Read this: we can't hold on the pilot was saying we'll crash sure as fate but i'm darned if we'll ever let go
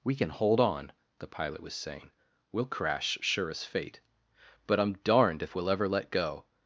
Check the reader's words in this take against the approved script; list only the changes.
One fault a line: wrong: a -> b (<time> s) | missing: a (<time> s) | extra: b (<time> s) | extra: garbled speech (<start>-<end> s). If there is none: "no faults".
wrong: can't -> can (0.1 s)